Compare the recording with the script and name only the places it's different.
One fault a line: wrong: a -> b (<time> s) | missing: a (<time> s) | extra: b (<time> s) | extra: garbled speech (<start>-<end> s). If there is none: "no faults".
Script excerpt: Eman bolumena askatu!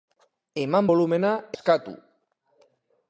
no faults